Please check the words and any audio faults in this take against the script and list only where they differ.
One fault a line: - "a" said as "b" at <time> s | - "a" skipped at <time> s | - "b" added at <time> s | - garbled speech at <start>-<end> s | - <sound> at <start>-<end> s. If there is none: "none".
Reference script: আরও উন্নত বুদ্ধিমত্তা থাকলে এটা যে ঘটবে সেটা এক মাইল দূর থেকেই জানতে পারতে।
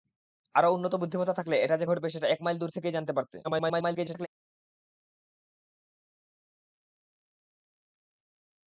- garbled speech at 3.4-4.3 s